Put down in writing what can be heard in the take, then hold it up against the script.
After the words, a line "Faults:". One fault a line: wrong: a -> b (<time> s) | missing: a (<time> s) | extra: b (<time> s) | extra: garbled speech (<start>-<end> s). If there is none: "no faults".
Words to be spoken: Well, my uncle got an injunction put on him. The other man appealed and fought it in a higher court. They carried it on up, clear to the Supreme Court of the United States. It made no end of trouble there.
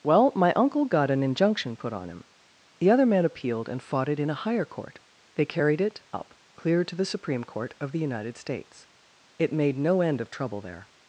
Well, my uncle got an injunction put on him. The other man appealed and fought it in a higher court. They carried it up, clear to the Supreme Court of the United States. It made no end of trouble there.
Faults:
missing: on (6.0 s)